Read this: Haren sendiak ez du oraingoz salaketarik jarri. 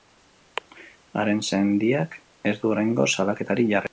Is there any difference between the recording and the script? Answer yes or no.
no